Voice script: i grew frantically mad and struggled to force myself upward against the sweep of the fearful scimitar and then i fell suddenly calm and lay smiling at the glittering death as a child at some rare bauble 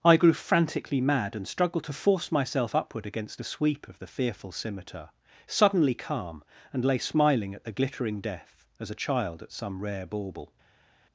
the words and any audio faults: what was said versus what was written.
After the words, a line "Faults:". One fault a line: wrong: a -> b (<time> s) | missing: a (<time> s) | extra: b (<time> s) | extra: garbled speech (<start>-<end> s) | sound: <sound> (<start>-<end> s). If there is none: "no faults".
i grew frantically mad and struggled to force myself upward against the sweep of the fearful scimitar suddenly calm and lay smiling at the glittering death as a child at some rare bauble
Faults:
missing: and then i fell (5.1 s)